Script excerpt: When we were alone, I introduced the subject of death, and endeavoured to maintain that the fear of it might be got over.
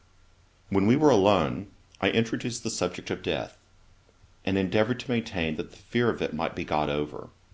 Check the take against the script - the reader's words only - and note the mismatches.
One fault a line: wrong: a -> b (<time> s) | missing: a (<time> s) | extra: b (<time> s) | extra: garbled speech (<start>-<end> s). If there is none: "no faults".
no faults